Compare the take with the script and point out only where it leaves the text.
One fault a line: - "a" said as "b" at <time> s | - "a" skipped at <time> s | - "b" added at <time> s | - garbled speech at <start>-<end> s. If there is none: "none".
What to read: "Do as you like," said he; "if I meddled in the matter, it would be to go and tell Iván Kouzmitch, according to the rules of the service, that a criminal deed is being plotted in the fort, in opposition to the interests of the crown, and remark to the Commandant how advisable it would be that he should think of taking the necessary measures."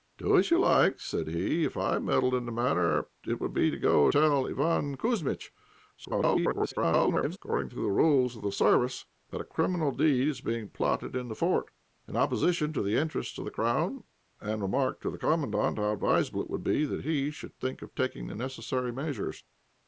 - "and" skipped at 4.1 s
- garbled speech at 6.0-7.4 s